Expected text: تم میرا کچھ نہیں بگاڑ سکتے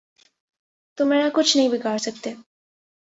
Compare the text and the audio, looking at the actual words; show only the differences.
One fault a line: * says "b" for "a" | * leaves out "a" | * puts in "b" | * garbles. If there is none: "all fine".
all fine